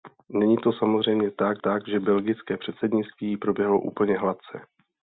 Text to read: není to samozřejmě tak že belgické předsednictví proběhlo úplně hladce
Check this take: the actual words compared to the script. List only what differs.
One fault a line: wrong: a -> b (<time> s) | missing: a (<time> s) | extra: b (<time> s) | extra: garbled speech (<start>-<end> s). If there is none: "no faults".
extra: tak (1.6 s)